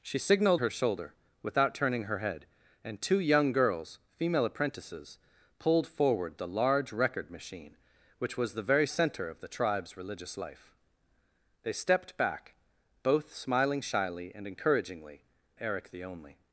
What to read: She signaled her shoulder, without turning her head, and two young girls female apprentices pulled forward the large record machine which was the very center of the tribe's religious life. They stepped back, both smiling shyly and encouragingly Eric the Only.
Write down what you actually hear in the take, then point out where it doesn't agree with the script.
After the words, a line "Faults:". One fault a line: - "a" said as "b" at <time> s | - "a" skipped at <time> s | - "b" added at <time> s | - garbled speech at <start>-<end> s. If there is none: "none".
She signaled her shoulder, without turning her head, and two young girls female apprentices pulled forward the large record machine which was the very center of the tribe's religious life. They stepped back, both smiling shyly and encouragingly Eric the Only.
Faults:
none